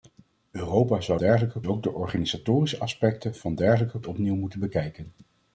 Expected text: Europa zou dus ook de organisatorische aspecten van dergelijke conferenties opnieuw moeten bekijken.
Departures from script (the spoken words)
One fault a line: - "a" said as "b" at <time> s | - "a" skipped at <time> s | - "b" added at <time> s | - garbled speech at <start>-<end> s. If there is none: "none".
- "dus" said as "dergelijke" at 1.2 s
- "conferenties" skipped at 4.0 s